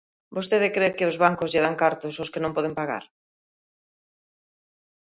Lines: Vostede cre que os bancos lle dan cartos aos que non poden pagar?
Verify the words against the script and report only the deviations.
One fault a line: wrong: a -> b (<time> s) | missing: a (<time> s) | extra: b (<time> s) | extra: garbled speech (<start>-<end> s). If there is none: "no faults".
no faults